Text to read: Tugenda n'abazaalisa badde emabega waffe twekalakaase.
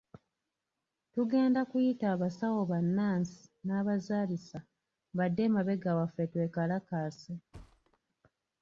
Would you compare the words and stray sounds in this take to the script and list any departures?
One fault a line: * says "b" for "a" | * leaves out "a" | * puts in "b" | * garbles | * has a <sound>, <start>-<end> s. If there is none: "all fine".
* puts in "kuyita abasawo bannansi"
* has a thud, 7.5-8.0 s